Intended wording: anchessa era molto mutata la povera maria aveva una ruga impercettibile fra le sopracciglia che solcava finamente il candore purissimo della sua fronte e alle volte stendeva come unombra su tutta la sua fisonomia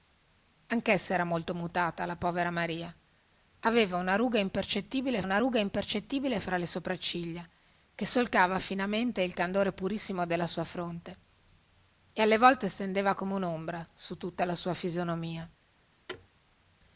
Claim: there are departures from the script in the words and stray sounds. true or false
true